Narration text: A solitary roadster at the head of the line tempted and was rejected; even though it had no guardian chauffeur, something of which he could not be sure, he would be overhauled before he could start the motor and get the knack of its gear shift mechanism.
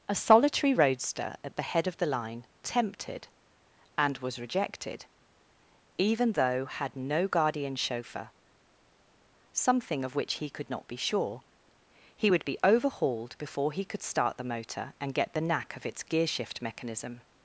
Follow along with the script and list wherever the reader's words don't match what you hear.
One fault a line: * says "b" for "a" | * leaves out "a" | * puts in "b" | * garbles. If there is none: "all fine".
* leaves out "it"